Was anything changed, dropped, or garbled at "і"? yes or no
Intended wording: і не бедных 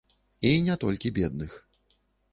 no